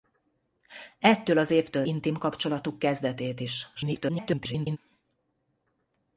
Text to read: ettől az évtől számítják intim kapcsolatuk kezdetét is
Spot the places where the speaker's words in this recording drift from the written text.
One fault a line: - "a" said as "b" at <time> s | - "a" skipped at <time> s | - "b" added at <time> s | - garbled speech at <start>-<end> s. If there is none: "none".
- "számítják" skipped at 1.9 s
- garbled speech at 3.7-4.8 s